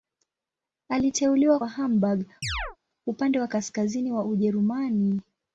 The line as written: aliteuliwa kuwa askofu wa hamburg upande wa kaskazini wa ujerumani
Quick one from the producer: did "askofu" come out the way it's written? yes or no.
no